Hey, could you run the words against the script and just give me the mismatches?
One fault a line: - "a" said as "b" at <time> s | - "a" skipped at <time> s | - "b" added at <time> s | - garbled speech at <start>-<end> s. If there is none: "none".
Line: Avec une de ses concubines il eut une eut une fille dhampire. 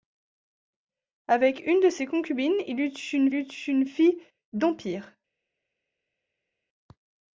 none